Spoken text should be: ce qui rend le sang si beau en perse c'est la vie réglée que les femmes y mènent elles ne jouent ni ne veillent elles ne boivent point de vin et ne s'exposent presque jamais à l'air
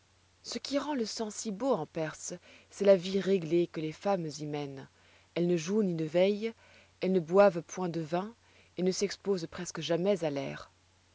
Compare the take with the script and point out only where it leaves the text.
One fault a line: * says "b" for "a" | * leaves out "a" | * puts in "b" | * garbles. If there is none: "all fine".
all fine